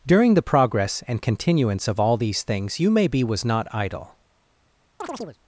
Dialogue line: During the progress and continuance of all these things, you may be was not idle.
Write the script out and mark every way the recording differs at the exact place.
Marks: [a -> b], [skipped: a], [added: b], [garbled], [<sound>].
During the progress and continuance of all these things, you may be was not idle. [chirp]